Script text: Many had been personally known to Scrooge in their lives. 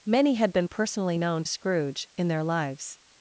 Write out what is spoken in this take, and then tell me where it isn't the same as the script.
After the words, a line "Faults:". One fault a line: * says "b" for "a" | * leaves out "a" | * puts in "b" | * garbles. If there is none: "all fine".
Many had been personally known Scrooge in their lives.
Faults:
* leaves out "to"